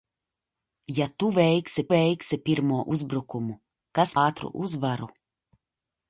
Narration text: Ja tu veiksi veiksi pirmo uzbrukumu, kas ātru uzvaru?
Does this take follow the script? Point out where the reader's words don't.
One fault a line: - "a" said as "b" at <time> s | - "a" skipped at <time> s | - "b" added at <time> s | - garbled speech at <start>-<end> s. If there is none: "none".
none